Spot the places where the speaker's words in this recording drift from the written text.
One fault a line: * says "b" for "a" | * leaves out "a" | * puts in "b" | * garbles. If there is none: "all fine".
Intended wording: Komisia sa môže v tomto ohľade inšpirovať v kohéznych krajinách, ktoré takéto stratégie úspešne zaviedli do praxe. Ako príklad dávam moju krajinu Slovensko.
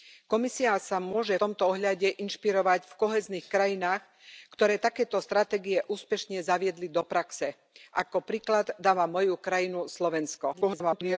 * leaves out "v"
* garbles